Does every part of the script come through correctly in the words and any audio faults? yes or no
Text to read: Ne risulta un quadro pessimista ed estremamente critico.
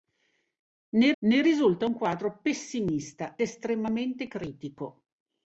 no